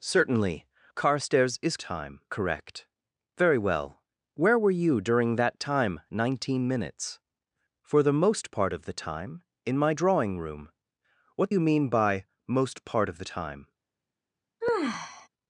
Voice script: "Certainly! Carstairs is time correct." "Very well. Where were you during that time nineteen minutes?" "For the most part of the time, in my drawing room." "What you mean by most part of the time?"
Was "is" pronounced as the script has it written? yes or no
yes